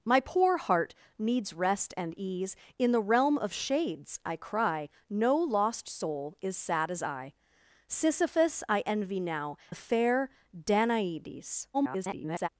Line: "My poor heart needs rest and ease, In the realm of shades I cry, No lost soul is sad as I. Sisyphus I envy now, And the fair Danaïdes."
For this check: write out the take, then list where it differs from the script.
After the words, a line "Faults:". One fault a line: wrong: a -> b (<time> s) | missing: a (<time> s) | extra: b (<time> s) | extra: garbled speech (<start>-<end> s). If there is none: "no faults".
"My poor heart needs rest and ease, In the realm of shades I cry, No lost soul is sad as I. Sisyphus I envy now, The fair Danaïdes." [garbled]
Faults:
missing: And (9.6 s)
extra: garbled speech (11.7-12.5 s)